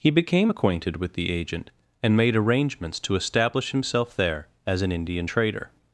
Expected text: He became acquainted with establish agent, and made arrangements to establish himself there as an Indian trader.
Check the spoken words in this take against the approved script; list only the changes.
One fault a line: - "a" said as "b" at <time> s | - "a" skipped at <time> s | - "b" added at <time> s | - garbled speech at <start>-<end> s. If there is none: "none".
- "establish" said as "the" at 1.1 s